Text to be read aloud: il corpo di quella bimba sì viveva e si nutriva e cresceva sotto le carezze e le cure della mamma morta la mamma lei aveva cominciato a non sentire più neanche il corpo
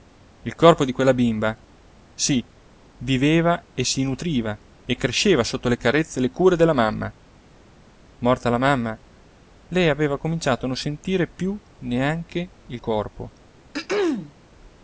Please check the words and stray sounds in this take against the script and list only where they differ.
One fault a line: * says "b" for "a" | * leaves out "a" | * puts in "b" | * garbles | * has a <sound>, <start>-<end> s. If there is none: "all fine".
* has a throat clearing, 13.7-14.3 s